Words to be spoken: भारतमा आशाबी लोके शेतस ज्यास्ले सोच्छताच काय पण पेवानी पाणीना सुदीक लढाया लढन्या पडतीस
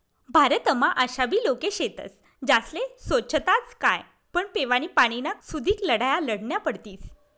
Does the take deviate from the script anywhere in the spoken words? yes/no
no